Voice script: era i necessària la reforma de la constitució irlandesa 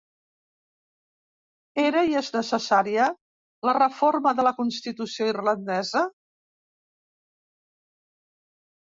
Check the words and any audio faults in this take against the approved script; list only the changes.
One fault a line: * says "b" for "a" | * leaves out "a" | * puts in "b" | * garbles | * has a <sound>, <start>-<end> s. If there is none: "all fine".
* puts in "és"